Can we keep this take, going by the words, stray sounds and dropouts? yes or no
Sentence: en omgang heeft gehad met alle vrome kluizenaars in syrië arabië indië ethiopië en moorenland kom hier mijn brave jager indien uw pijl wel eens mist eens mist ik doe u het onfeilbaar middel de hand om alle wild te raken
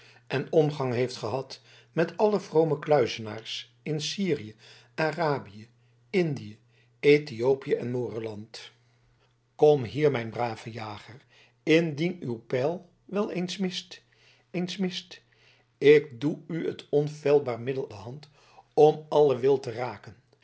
yes